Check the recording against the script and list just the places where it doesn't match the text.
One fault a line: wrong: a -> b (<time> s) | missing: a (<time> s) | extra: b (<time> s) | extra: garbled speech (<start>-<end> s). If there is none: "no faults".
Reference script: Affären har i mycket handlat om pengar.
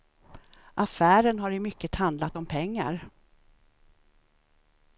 no faults